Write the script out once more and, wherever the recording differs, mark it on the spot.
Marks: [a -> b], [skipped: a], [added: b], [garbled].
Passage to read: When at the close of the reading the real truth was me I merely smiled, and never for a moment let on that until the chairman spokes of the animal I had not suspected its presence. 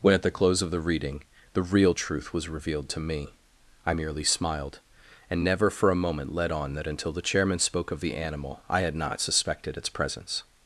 When at the close of the reading the real truth was [added: revealed to] me I merely smiled, and never for a moment let on that until the chairman [spokes -> spoke] of the animal I had not suspected its presence.